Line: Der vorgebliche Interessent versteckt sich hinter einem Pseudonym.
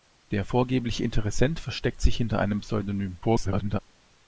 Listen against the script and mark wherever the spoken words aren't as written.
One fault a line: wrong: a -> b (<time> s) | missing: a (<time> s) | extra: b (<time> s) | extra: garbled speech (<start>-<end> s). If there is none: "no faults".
extra: garbled speech (3.2-3.8 s)